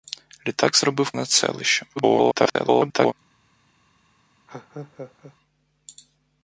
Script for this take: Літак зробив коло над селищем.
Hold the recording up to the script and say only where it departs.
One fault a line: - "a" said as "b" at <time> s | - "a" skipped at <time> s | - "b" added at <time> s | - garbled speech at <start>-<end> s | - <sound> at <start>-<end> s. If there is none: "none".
- "коло" skipped at 1.1 s
- garbled speech at 2.0-3.1 s
- laugh at 4.5-5.4 s